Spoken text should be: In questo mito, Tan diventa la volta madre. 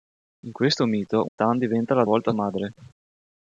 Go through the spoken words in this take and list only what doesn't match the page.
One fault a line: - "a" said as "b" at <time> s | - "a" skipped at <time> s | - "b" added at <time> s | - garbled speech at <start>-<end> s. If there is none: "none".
none